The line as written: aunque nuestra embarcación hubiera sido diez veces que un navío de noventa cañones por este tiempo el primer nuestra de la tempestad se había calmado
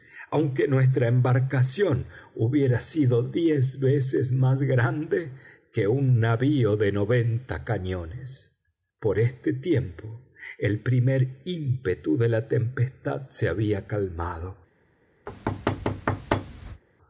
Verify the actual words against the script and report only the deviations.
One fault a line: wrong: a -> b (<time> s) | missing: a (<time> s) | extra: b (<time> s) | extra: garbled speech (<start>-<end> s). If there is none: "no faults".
extra: más grande (4.3 s)
wrong: nuestra -> ímpetu (11.4 s)